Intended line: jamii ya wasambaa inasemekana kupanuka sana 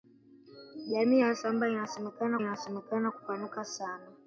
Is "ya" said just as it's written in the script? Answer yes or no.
yes